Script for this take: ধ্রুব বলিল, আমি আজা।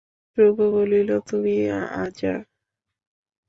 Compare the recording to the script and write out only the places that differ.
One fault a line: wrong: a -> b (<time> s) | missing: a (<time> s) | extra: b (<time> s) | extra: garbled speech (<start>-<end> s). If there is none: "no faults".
wrong: আমি -> তুমি (1.3 s)